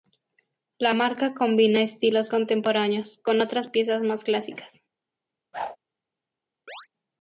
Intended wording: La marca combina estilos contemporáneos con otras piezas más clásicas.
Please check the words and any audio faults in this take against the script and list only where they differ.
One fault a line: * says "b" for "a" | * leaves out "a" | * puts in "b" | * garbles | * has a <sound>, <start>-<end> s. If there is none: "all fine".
* has a whoosh, 5.5-5.8 s
* has a chirp, 6.7-6.9 s